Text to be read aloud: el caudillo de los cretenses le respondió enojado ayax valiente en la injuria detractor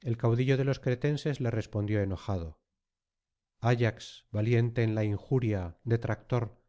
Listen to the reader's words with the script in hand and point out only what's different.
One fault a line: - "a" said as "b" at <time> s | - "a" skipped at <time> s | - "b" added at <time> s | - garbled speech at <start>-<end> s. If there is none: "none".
none